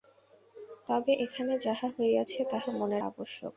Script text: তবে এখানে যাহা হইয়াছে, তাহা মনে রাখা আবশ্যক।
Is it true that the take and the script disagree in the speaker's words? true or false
true